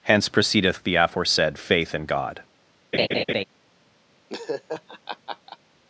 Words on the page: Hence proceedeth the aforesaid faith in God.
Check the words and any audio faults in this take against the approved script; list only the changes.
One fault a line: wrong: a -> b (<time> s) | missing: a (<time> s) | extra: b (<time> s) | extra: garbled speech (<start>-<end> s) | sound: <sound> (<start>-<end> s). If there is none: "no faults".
sound: laugh (2.9-3.4 s)
sound: laugh (4.3-5.6 s)